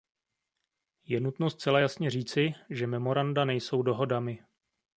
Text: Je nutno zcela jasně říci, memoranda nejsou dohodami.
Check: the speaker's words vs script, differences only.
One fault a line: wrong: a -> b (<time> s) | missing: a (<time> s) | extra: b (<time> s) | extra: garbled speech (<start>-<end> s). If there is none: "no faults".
extra: že (2.7 s)